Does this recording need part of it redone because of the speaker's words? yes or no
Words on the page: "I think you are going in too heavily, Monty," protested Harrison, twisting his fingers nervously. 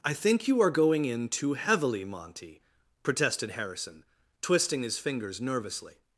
no